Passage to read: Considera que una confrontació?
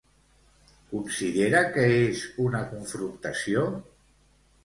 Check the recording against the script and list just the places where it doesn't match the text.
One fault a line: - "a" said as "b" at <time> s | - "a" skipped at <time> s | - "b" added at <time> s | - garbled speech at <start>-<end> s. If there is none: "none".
- "és" added at 2.0 s